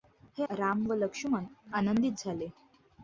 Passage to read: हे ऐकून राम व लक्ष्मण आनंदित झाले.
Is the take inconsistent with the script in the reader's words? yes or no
yes